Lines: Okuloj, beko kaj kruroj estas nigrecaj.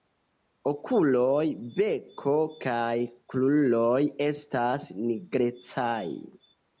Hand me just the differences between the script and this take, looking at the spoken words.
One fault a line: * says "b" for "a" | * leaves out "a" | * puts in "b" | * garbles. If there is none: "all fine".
all fine